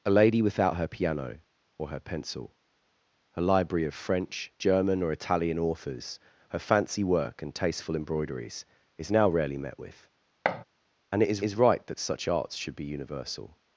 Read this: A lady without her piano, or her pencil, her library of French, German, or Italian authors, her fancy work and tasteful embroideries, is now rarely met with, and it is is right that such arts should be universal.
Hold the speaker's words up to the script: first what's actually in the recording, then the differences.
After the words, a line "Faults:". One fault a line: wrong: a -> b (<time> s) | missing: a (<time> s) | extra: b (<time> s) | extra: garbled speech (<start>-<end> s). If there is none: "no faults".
A lady without her piano, or her pencil, her library of French, German, or Italian authors, her fancy work and tasteful embroideries, is now rarely met with, and it is is right that such arts should be universal.
Faults:
no faults